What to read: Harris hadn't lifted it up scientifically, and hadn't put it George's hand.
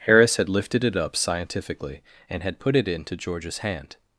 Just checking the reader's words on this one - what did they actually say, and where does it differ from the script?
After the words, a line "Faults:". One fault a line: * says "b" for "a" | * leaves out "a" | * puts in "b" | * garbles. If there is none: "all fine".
Harris had lifted it up scientifically, and had put it into George's hand.
Faults:
* says "had" for "hadn't"
* says "had" for "hadn't"
* puts in "into"